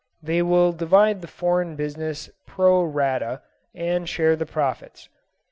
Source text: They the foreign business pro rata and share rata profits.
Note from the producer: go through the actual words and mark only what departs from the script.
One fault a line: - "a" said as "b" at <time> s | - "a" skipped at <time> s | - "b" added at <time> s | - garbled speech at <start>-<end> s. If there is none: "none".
- "will divide" added at 0.4 s
- "rata" said as "the" at 4.3 s